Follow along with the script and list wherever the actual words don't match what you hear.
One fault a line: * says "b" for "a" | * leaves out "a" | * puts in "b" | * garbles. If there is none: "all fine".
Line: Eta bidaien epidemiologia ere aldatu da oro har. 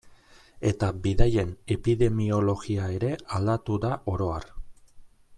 all fine